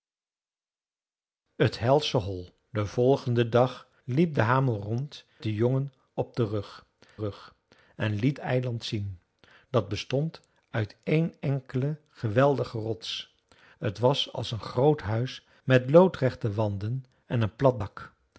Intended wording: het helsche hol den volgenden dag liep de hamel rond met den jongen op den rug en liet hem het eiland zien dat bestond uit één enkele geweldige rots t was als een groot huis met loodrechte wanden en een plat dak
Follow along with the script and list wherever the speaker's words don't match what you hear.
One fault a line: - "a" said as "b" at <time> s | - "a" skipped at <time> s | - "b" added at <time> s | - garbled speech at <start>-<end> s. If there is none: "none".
- "met" skipped at 5.2 s
- "rug" added at 7.2 s
- "hem het" skipped at 8.4 s